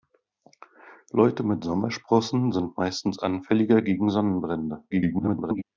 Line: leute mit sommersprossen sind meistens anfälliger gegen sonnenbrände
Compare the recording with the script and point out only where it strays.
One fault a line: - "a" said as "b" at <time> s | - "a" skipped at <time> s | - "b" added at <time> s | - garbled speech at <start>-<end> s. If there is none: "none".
- garbled speech at 4.9-5.6 s